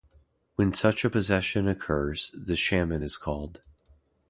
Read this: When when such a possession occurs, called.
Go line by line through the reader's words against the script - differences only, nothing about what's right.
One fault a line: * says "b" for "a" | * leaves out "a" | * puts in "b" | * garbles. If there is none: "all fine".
* leaves out "when"
* puts in "the shaman is"